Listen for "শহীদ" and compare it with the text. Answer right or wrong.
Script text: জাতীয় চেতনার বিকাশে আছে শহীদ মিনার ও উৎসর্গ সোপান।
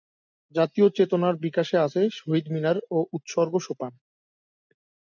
right